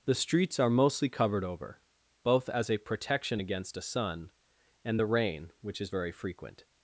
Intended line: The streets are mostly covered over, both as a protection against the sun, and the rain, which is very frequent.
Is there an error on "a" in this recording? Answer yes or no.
no